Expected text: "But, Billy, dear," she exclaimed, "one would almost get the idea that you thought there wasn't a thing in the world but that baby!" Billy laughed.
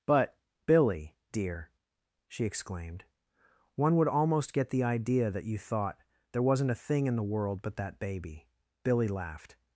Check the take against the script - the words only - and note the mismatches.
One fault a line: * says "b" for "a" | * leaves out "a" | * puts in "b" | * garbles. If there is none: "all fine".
all fine